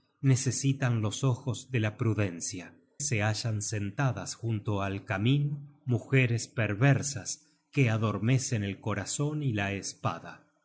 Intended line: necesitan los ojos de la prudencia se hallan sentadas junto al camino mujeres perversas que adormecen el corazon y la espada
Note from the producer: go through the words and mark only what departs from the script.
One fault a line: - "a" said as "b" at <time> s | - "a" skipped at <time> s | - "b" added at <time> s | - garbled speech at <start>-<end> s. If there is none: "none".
none